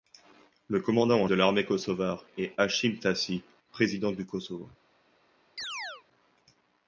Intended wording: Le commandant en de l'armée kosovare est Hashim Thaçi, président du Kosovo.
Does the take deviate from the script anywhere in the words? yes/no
no